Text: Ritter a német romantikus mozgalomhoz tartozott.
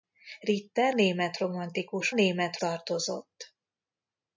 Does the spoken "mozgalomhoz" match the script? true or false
false